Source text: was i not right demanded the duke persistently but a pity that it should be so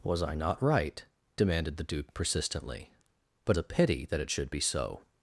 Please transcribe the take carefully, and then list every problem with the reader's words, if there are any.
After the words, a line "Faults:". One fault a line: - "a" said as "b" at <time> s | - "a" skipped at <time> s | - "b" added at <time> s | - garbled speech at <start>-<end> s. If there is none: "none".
was i not right demanded the duke persistently but a pity that it should be so
Faults:
none